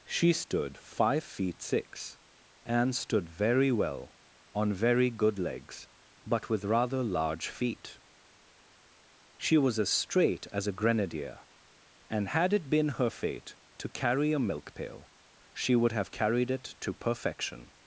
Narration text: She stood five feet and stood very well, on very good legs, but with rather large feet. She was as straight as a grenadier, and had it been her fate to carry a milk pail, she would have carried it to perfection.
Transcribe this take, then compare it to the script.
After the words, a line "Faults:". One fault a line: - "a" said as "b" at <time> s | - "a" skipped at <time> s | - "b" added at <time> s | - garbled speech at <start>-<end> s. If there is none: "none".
She stood five feet six, and stood very well, on very good legs, but with rather large feet. She was as straight as a grenadier, and had it been her fate to carry a milk pail, she would have carried it to perfection.
Faults:
- "six" added at 1.6 s